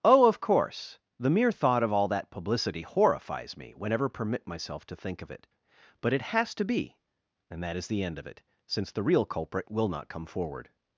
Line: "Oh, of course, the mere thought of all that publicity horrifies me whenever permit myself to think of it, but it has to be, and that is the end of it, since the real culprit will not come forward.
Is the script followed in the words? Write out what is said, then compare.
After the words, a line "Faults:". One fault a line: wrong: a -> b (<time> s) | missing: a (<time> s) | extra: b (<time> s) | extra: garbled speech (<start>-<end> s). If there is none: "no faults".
"Oh, of course, the mere thought of all that publicity horrifies me whenever permit myself to think of it, but it has to be, and that is the end of it, since the real culprit will not come forward.
Faults:
no faults